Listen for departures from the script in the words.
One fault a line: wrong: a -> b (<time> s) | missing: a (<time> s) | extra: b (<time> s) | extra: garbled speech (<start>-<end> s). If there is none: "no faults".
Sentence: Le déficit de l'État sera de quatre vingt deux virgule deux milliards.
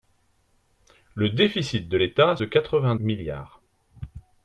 missing: sera (2.4 s)
missing: deux virgule deux (2.9 s)